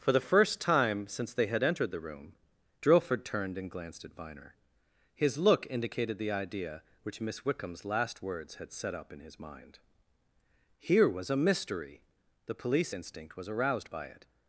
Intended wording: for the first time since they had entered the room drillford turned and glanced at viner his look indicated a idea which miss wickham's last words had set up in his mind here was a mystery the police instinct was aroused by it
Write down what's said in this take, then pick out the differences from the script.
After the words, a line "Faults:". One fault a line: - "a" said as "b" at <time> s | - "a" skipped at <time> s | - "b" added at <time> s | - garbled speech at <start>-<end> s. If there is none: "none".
for the first time since they had entered the room drillford turned and glanced at viner his look indicated the idea which miss wickham's last words had set up in his mind here was a mystery the police instinct was aroused by it
Faults:
- "a" said as "the" at 6.2 s